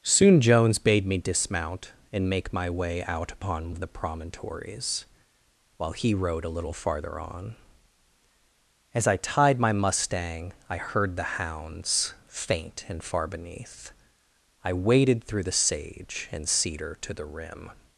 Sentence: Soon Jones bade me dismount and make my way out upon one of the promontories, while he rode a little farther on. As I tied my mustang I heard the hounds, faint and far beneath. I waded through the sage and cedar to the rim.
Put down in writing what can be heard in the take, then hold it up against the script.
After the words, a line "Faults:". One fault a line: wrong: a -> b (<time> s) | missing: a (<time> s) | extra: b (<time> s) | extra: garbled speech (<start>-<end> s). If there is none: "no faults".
Soon Jones bade me dismount and make my way out upon of the promontories, while he rode a little farther on. As I tied my mustang I heard the hounds, faint and far beneath. I waded through the sage and cedar to the rim.
Faults:
missing: one (3.8 s)